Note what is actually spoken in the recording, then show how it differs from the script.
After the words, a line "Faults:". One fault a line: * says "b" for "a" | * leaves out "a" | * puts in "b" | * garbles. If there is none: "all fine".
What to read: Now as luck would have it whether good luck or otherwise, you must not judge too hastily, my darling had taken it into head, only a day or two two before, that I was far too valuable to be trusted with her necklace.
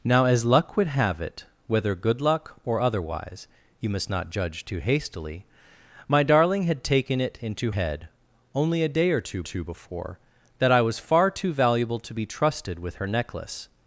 Now as luck would have it whether good luck or otherwise, you must not judge too hastily, my darling had taken it into head, only a day or two two before, that I was far too valuable to be trusted with her necklace.
Faults:
all fine